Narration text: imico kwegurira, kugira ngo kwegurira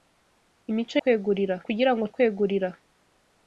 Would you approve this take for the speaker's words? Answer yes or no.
yes